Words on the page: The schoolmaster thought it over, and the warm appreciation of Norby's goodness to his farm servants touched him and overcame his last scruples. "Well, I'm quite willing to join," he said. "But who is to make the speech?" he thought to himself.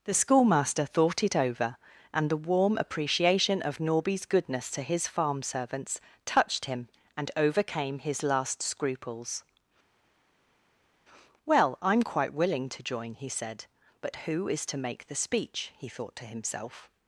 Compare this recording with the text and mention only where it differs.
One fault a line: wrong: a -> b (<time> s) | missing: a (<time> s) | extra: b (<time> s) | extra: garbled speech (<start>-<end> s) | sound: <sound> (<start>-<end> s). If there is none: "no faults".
no faults